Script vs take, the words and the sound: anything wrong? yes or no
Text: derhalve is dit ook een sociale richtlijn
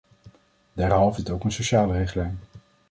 yes